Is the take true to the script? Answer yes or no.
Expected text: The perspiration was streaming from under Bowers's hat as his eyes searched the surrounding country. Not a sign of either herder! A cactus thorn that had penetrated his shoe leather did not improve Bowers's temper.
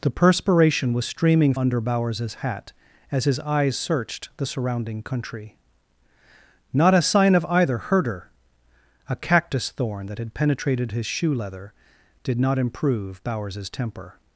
no